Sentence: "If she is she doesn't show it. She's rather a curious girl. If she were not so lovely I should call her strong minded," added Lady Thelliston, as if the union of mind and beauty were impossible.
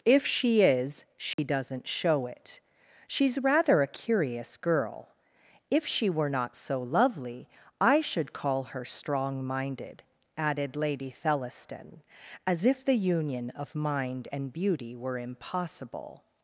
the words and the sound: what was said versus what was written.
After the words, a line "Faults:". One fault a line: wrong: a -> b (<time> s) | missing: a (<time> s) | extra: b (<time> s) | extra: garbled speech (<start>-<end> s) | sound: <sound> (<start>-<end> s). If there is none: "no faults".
"If she is she doesn't show it. She's rather a curious girl. If she were not so lovely I should call her strong minded," added Lady Thelliston, as if the union of mind and beauty were impossible.
Faults:
sound: dropout (1.3-1.4 s)